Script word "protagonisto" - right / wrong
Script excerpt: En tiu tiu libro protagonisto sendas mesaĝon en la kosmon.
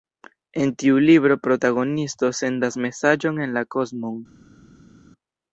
right